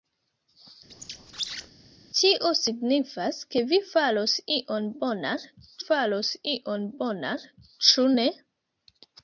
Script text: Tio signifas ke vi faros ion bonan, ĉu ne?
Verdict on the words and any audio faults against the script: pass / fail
fail